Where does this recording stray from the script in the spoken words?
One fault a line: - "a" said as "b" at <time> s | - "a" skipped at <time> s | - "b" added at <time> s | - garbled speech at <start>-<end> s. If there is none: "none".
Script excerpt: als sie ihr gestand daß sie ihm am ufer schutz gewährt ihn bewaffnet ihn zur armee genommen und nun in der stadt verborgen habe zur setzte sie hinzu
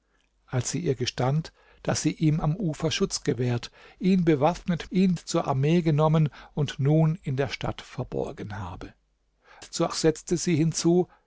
none